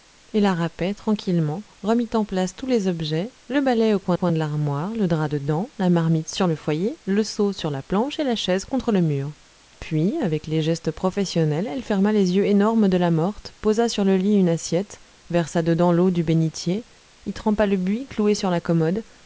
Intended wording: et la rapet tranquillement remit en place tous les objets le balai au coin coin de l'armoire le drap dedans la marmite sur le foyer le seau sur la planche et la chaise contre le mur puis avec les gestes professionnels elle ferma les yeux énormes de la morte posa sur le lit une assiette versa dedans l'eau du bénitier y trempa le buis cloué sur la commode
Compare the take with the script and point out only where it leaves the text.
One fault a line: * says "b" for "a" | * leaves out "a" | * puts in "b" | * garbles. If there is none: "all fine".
all fine